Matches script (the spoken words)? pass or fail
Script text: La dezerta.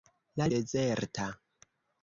pass